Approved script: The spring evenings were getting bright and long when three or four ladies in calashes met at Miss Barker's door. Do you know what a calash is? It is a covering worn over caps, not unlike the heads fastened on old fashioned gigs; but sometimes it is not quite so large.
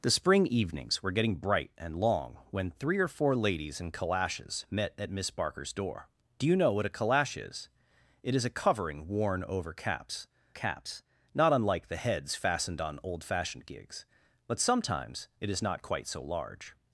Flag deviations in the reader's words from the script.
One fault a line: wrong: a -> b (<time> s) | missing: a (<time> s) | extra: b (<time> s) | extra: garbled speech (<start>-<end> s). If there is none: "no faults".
extra: caps (10.5 s)